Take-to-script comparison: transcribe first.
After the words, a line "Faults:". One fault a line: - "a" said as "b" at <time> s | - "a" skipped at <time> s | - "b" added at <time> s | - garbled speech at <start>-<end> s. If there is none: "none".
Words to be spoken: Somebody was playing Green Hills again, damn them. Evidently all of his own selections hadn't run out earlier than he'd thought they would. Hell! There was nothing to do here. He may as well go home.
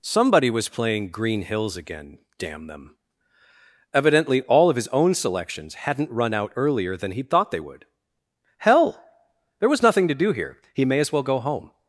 Somebody was playing Green Hills again, damn them. Evidently all of his own selections hadn't run out earlier than he'd thought they would. Hell! There was nothing to do here. He may as well go home.
Faults:
none